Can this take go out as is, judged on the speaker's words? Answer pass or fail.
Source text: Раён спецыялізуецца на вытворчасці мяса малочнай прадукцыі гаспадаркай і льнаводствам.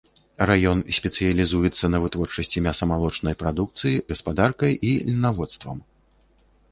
pass